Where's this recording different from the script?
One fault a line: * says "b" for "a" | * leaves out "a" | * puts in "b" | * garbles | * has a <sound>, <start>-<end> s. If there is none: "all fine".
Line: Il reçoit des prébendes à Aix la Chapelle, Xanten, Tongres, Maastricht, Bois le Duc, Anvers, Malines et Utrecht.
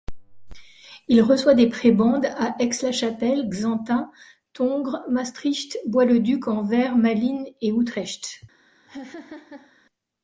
* has a laugh, 8.9-9.7 s